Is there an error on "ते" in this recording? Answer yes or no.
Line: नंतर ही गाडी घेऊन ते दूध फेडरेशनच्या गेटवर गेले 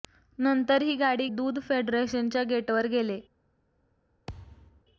yes